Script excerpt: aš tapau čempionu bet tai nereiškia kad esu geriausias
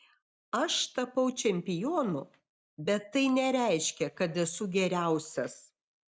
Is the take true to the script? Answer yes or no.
yes